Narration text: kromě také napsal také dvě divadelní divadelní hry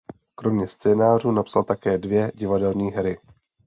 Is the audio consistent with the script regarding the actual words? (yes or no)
no